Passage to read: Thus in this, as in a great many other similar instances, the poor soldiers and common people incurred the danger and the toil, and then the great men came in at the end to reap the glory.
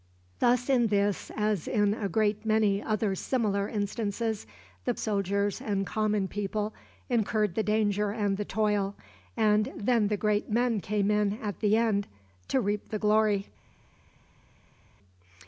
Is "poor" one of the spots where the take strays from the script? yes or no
yes